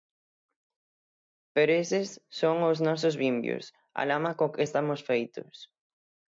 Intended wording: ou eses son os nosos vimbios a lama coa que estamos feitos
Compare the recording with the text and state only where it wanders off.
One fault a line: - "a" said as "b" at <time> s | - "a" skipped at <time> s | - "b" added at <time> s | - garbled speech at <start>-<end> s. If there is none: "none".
- "ou" said as "pero" at 1.6 s